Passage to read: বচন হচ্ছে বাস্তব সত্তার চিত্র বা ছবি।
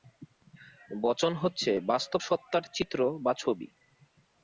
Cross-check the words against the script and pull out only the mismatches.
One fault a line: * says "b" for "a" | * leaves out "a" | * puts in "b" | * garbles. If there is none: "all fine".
all fine